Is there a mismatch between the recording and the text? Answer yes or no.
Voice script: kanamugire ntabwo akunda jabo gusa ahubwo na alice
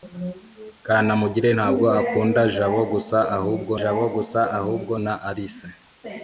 yes